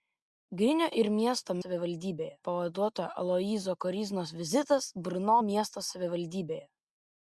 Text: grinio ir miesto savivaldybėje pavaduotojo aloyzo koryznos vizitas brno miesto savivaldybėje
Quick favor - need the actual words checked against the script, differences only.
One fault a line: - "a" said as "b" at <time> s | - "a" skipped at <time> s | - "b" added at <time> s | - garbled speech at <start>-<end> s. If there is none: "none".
none